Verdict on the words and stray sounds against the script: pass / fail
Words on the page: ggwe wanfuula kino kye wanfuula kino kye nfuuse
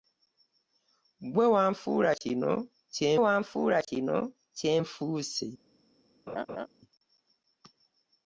fail